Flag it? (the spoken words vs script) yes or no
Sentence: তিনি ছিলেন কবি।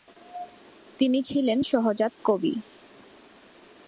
yes